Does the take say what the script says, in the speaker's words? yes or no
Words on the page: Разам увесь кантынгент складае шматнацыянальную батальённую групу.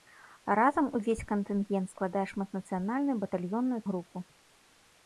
yes